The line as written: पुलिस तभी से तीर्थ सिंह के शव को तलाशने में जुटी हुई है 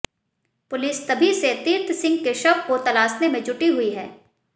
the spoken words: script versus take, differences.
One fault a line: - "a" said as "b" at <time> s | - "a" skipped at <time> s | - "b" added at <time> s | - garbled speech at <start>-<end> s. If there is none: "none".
none